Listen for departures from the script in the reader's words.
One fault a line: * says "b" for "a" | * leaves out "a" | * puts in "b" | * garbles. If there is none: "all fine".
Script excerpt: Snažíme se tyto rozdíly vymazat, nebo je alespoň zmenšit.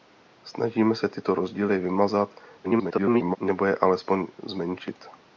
* garbles